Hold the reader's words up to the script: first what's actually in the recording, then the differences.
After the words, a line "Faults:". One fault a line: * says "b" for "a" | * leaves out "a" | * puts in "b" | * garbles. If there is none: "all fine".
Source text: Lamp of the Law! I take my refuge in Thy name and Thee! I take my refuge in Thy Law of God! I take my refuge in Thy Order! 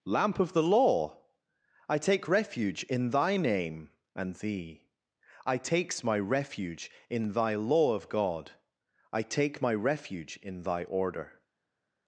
Lamp of the Law! I take refuge in Thy name and Thee! I takes my refuge in Thy Law of God! I take my refuge in Thy Order!
Faults:
* leaves out "my"
* says "takes" for "take"